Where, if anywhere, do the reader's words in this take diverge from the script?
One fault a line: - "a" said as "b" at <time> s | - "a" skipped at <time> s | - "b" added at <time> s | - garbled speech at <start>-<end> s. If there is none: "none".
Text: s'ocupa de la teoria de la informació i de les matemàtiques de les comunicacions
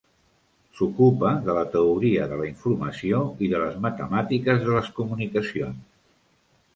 none